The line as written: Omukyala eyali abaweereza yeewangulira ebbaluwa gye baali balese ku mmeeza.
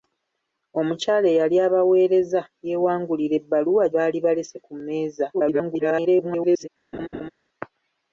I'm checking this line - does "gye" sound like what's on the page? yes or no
no